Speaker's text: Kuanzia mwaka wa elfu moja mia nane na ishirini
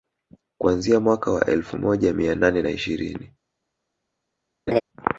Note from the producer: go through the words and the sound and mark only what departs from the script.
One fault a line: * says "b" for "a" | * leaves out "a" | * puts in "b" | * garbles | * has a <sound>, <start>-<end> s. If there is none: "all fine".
* has a laugh, 4.7-4.8 s